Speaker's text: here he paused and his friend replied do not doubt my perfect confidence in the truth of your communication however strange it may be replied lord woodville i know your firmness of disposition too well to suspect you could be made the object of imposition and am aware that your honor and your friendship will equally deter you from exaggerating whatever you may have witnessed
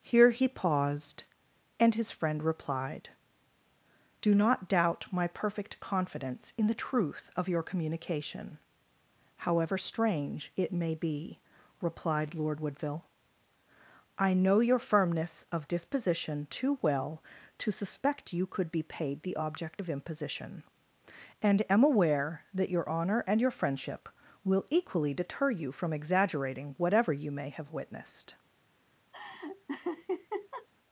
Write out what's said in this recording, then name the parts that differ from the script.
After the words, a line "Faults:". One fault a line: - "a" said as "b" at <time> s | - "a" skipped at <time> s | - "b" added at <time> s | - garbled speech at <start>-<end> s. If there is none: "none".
here he paused and his friend replied do not doubt my perfect confidence in the truth of your communication however strange it may be replied lord woodville i know your firmness of disposition too well to suspect you could be paid the object of imposition and am aware that your honor and your friendship will equally deter you from exaggerating whatever you may have witnessed
Faults:
- "made" said as "paid" at 18.8 s